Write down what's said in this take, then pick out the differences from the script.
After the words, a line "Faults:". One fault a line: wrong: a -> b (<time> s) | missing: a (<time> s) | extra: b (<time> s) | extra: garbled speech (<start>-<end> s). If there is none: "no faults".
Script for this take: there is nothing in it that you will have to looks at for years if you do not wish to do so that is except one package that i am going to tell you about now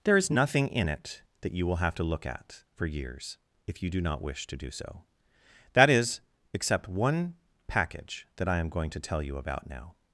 there is nothing in it that you will have to look at for years if you do not wish to do so that is except one package that i am going to tell you about now
Faults:
wrong: looks -> look (2.0 s)